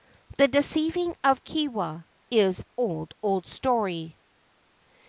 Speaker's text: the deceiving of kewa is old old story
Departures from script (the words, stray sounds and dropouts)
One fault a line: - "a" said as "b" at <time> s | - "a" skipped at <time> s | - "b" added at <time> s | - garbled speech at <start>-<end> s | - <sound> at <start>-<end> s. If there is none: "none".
none